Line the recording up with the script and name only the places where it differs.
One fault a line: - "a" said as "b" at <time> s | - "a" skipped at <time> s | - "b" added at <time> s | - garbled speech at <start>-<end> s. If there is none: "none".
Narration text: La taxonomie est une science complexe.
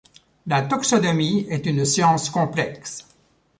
none